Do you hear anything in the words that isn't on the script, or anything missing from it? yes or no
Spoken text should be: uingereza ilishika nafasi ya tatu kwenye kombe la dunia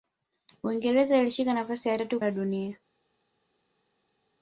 yes